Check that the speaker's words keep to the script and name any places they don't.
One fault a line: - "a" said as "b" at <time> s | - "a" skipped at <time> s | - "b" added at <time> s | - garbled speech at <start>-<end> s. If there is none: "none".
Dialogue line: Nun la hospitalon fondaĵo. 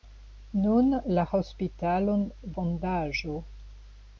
none